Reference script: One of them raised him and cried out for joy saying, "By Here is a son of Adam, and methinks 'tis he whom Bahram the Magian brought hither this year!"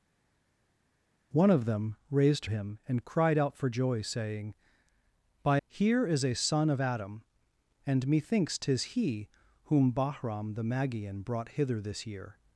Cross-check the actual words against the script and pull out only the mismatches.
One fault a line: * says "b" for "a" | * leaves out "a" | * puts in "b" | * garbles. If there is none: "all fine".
all fine